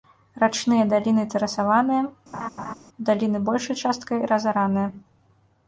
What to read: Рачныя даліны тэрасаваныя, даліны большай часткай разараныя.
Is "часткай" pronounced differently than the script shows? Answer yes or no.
no